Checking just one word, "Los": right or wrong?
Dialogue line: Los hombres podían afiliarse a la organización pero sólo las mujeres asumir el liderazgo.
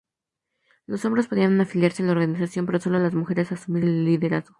right